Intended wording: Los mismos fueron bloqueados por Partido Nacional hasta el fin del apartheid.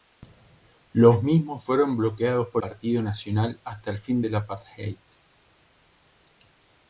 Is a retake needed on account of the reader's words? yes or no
no